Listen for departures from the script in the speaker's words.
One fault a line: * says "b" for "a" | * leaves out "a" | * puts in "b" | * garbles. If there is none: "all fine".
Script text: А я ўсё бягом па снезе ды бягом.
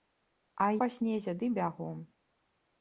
* leaves out "я ўсё бягом"